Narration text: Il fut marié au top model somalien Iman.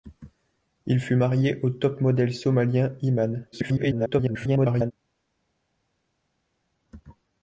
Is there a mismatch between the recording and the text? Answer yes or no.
yes